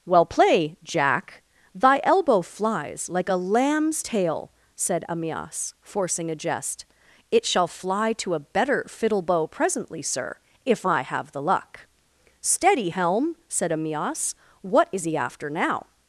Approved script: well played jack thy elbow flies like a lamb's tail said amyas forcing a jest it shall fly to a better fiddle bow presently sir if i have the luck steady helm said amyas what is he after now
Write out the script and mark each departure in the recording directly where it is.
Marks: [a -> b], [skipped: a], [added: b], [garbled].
well [played -> play] jack thy elbow flies like a lamb's tail said amyas forcing a jest it shall fly to a better fiddle bow presently sir if i have the luck steady helm said amyas what is he after now